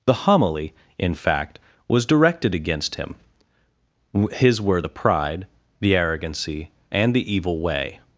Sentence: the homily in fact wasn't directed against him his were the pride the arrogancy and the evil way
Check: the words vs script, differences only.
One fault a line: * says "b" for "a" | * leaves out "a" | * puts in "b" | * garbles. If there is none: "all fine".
* says "was" for "wasn't"